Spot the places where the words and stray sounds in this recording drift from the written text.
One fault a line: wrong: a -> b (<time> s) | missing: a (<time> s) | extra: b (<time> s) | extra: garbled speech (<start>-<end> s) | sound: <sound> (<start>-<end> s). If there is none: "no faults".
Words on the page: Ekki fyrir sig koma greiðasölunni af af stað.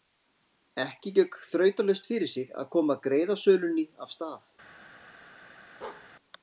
extra: gekk þrautalaust (1.2 s)
extra: að (2.6 s)
missing: af (4.2 s)
sound: bark (5.8-6.1 s)